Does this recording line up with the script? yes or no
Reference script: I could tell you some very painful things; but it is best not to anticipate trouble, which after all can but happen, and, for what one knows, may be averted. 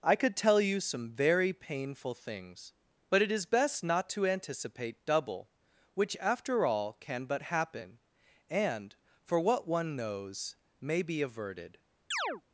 no